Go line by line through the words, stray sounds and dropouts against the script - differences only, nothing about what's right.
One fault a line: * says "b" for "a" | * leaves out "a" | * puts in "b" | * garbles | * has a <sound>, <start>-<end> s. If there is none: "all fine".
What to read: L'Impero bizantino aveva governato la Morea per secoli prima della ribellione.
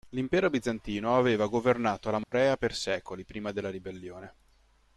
* has a dropout, 2.2-2.3 s